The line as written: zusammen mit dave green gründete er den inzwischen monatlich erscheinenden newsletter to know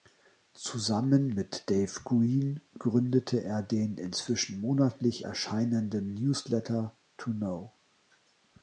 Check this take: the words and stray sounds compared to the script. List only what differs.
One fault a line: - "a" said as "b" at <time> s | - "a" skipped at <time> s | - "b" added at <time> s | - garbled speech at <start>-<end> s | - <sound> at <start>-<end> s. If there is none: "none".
none